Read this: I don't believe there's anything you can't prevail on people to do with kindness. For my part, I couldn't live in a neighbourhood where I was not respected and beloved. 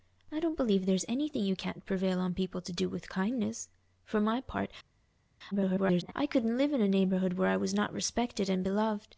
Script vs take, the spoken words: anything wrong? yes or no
yes